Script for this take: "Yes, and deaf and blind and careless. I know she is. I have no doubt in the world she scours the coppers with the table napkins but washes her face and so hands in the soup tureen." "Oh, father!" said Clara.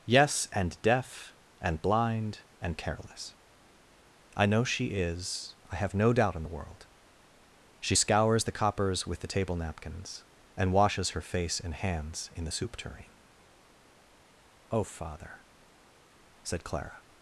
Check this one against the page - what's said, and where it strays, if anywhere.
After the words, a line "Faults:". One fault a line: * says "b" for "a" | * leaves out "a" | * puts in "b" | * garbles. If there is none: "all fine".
"Yes, and deaf and blind and careless. I know she is. I have no doubt in the world she scours the coppers with the table napkins and washes her face and hands in the soup tureen." "Oh, father!" said Clara.
Faults:
* says "and" for "but"
* leaves out "so"